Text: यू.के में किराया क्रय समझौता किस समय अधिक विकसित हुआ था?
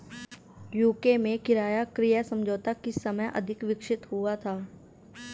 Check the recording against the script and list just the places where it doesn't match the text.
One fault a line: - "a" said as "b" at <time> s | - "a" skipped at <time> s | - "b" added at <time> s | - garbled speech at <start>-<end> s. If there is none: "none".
none